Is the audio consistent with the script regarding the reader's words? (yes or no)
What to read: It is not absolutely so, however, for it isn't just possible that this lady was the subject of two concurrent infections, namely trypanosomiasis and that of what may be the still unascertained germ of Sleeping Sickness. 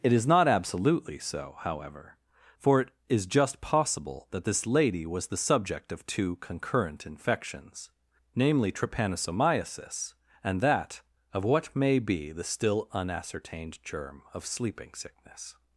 no